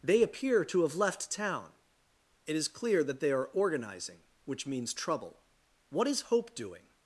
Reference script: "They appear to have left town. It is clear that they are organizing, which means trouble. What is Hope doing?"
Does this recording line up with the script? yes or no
yes